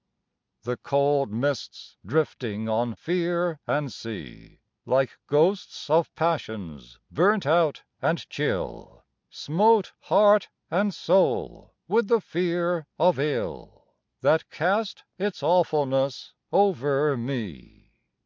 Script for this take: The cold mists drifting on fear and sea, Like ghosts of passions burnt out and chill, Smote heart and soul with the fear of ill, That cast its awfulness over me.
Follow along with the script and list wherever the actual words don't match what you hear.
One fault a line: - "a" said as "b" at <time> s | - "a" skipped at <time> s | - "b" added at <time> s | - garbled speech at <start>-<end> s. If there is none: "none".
none